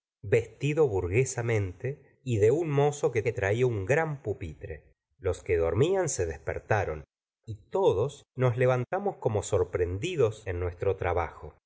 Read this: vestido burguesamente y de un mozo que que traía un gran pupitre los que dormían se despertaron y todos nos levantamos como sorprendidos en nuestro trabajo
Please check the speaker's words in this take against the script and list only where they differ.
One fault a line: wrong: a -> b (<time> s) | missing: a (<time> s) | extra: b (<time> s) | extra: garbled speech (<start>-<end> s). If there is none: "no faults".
no faults